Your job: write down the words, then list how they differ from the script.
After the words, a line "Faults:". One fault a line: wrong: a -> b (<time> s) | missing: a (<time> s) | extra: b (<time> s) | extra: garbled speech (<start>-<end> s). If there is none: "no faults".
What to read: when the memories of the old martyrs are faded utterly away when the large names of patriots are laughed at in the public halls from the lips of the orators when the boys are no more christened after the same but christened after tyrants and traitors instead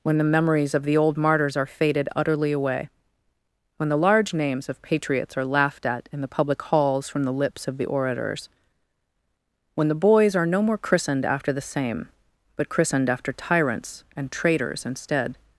when the memories of the old martyrs are faded utterly away when the large names of patriots are laughed at in the public halls from the lips of the orators when the boys are no more christened after the same but christened after tyrants and traitors instead
Faults:
no faults